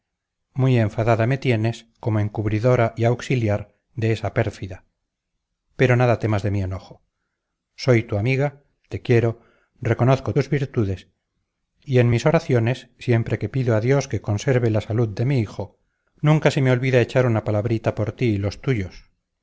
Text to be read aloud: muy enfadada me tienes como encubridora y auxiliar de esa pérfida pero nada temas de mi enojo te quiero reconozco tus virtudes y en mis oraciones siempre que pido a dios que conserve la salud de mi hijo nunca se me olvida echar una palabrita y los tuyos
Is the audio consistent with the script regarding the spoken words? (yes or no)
no